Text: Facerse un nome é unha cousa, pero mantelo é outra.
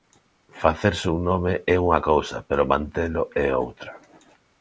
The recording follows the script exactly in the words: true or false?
true